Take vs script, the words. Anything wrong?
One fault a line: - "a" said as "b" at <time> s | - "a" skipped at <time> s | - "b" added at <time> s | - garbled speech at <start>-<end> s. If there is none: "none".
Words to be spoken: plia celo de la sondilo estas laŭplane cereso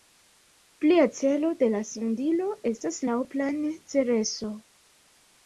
none